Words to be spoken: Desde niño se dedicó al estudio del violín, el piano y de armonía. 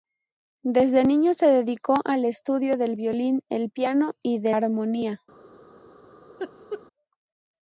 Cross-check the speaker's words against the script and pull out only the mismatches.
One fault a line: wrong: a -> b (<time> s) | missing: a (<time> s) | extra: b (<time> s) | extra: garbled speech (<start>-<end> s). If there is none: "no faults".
no faults